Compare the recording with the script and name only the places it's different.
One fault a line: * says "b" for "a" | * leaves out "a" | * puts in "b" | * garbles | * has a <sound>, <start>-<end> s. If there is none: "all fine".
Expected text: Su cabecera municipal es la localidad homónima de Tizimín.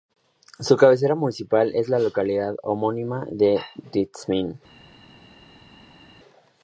all fine